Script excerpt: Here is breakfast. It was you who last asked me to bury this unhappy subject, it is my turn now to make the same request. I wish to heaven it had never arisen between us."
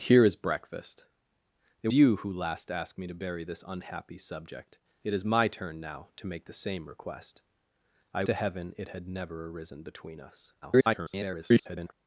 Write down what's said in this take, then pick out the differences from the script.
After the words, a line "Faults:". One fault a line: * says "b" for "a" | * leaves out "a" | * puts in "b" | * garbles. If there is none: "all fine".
Here is breakfast. It you who last asked me to bury this unhappy subject, it is my turn now to make the same request. I to heaven it had never arisen between us." [garbled]
Faults:
* leaves out "was"
* leaves out "wish"
* garbles